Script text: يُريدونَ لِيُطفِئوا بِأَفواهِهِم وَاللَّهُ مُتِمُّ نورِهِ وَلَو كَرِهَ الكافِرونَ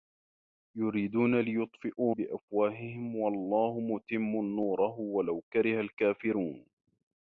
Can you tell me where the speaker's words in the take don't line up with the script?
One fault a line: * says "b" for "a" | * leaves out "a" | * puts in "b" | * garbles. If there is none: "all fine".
all fine